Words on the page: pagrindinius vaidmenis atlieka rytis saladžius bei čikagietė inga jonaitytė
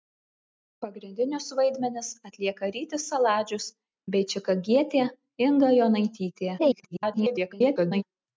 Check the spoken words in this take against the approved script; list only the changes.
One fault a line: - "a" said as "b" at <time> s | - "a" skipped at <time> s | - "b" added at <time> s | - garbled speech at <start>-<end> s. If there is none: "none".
- garbled speech at 6.6-8.0 s